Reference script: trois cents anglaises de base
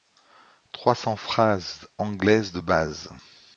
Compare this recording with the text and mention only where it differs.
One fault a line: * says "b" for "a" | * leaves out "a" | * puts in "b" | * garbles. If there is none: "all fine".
* puts in "phrases"